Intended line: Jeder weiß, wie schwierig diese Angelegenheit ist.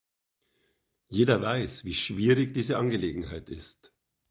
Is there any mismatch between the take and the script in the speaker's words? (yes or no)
no